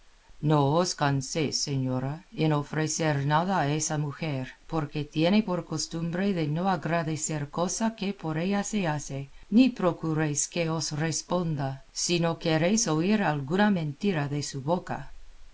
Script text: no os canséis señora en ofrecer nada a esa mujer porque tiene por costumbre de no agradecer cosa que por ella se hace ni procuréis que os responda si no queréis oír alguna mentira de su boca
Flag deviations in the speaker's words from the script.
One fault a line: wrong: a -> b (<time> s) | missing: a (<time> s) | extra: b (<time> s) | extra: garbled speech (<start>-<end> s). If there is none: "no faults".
no faults